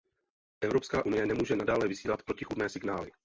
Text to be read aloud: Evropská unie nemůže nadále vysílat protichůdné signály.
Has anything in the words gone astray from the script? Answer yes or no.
no